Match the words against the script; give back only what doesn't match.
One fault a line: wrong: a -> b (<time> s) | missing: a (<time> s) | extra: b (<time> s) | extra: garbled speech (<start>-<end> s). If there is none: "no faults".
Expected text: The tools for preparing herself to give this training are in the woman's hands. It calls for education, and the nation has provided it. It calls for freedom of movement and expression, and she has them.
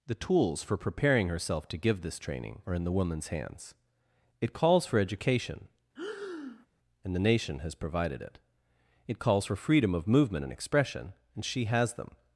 no faults